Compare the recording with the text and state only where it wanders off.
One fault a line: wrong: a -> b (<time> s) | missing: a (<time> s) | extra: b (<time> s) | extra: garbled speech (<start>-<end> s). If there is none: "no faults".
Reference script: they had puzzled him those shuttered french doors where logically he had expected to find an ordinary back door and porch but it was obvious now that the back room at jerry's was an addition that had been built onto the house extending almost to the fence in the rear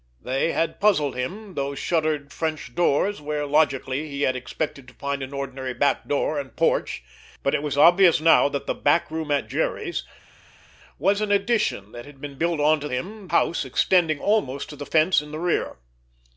wrong: the -> him (12.9 s)